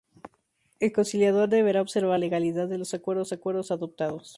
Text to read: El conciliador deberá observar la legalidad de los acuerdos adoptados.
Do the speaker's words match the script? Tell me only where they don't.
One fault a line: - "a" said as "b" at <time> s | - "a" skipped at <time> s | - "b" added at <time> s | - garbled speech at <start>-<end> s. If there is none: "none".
- "la" skipped at 2.2 s
- "acuerdos" added at 3.3 s